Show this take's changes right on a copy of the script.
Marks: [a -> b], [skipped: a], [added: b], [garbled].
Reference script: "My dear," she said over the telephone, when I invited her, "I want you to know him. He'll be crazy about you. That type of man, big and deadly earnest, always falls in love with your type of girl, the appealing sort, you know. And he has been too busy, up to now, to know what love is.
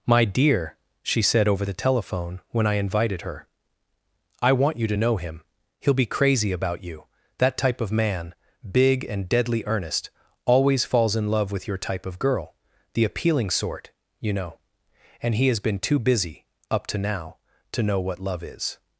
"My dear," she said over the telephone, when I invited her, "I want you to know him. He'll be crazy about you. That type of man, big and deadly earnest, always falls in love with your type of girl, the appealing sort, you know. And he has been too busy, up to now, to know what love is.